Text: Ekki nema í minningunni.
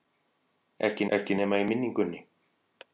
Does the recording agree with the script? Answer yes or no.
no